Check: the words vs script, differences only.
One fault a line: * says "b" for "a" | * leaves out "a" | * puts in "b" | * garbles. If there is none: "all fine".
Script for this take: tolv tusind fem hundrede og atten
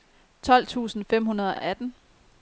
* puts in "og"